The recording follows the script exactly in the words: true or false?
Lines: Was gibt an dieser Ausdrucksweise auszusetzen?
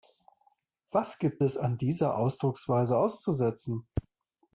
false